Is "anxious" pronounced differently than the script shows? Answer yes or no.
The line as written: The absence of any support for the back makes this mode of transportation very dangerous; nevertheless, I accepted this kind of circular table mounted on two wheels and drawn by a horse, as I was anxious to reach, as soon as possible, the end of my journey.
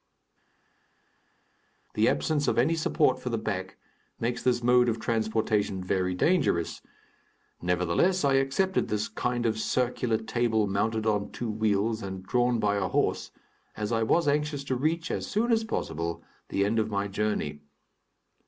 no